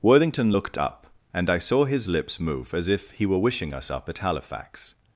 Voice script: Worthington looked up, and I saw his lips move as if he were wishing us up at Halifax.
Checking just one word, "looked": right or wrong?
right